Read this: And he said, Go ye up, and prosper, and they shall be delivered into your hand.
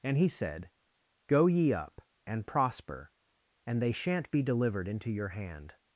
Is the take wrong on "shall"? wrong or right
wrong